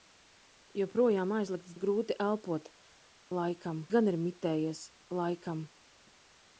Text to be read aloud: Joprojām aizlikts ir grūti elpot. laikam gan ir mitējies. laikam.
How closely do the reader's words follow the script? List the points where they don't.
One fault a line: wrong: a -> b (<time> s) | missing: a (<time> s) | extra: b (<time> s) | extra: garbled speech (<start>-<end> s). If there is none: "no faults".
no faults